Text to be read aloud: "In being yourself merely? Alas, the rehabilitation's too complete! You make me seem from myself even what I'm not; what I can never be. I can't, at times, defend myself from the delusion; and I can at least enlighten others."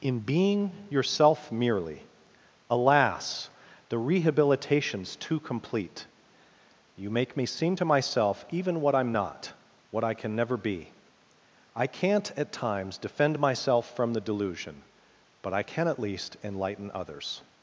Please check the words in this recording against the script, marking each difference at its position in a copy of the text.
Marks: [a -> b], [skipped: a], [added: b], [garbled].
"In being yourself merely? Alas, the rehabilitation's too complete! You make me seem [from -> to] myself even what I'm not; what I can never be. I can't, at times, defend myself from the delusion; [and -> but] I can at least enlighten others."